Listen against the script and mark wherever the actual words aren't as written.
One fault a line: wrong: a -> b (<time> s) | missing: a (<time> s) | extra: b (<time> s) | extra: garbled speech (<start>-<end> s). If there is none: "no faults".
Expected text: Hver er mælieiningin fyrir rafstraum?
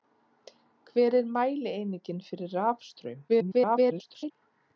extra: garbled speech (3.3-4.3 s)